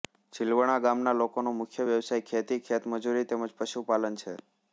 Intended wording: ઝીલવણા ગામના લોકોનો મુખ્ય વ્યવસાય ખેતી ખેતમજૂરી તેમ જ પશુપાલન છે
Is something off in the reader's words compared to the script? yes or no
no